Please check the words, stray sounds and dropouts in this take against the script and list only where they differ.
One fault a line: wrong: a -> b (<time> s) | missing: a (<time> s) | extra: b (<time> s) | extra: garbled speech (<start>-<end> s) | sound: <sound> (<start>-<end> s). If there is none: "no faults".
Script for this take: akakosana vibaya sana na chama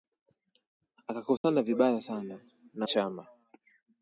sound: dropout (1.4-1.4 s)